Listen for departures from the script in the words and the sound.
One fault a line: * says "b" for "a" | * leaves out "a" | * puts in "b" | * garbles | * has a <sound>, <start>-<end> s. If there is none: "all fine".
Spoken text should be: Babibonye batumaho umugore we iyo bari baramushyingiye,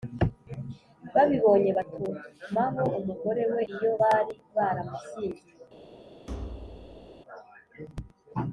* has a thud, 6.3-7.2 s